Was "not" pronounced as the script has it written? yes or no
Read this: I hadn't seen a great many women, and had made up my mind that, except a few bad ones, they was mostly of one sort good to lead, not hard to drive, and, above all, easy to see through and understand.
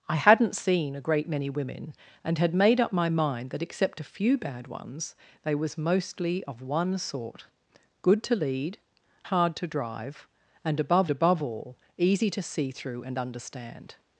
no